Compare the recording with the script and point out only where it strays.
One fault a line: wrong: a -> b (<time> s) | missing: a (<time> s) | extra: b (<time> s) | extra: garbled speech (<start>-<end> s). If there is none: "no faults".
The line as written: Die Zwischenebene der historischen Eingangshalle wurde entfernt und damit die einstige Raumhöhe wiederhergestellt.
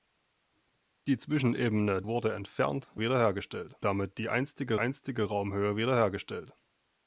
missing: der historischen Eingangshalle (2.0 s)
wrong: und -> wiederhergestellt (3.0 s)
extra: einstige (4.8 s)